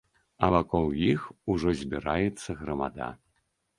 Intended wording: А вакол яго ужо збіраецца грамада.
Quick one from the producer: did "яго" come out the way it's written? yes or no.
no